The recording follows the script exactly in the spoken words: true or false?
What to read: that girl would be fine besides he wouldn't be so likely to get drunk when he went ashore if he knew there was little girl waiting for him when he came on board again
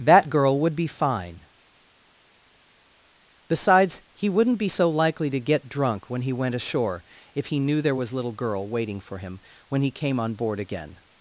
true